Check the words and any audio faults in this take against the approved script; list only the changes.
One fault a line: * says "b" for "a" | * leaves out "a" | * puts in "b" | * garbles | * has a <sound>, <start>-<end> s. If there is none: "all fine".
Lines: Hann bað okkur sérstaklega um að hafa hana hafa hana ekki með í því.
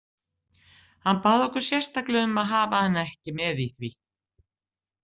* leaves out "hafa hana"